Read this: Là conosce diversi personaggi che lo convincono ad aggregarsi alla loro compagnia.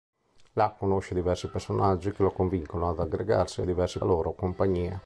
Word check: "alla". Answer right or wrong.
wrong